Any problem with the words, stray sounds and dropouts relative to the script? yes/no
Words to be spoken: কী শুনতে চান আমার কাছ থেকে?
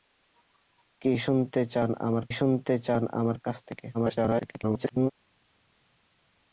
yes